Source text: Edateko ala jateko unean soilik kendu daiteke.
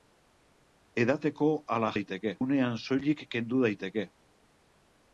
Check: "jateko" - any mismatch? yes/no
yes